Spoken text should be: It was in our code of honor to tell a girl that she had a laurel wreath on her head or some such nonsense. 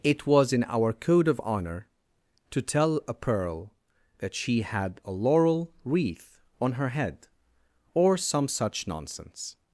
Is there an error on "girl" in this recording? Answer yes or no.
yes